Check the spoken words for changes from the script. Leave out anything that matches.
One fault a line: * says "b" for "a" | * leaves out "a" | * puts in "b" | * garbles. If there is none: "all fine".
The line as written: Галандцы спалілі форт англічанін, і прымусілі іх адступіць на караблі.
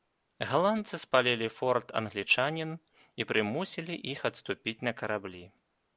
all fine